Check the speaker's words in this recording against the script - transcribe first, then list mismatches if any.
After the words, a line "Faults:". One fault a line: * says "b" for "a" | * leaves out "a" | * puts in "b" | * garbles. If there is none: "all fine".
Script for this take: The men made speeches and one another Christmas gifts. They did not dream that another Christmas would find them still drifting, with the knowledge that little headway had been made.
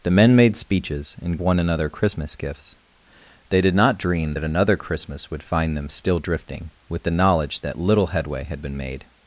The men made speeches and one another Christmas gifts. They did not dream that another Christmas would find them still drifting, with the knowledge that little headway had been made.
Faults:
all fine